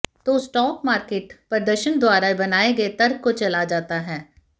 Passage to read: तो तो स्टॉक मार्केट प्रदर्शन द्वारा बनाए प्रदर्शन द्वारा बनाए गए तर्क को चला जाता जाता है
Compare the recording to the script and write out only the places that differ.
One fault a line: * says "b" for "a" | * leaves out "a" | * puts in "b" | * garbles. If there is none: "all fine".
* leaves out "तो"
* leaves out "प्रदर्शन द्वारा बनाए"
* leaves out "जाता"